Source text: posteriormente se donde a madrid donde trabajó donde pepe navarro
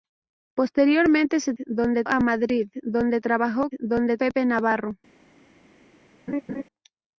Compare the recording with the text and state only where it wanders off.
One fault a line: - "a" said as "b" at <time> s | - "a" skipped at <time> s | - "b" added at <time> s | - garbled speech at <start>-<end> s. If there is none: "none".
none